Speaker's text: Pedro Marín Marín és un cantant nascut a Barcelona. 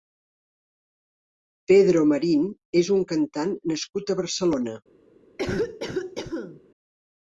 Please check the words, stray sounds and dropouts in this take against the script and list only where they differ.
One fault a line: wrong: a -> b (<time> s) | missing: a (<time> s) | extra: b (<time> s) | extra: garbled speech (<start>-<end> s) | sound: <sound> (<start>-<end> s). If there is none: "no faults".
missing: Marín (2.5 s)
sound: cough (5.4-6.6 s)